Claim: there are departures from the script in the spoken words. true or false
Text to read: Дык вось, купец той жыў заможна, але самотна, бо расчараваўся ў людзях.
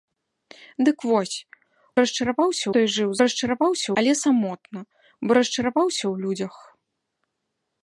true